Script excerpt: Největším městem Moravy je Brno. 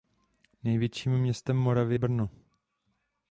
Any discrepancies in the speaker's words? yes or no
yes